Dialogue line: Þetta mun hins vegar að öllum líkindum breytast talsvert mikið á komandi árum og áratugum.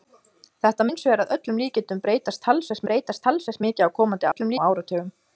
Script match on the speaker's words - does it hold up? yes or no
no